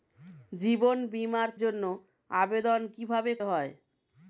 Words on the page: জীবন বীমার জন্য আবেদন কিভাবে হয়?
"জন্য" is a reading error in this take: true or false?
false